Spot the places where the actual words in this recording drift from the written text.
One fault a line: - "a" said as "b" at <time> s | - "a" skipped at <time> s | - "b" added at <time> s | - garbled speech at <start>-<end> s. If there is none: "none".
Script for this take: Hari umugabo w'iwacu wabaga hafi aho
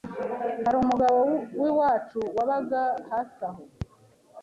none